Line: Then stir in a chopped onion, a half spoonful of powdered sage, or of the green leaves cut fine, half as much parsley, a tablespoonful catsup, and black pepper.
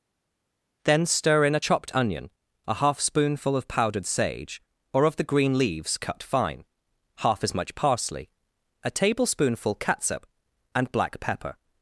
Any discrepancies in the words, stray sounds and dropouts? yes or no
no